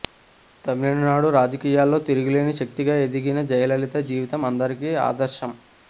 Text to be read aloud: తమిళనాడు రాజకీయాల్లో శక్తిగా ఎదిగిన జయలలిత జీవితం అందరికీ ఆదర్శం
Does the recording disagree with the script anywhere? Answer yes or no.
yes